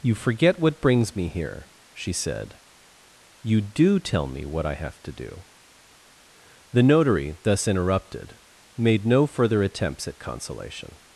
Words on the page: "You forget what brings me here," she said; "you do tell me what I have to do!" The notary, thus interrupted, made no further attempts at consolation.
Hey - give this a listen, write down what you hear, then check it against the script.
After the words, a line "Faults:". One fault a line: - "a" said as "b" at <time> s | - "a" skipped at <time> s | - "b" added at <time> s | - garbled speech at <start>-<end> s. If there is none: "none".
"You forget what brings me here," she said; "you do tell me what I have to do!" The notary, thus interrupted, made no further attempts at consolation.
Faults:
none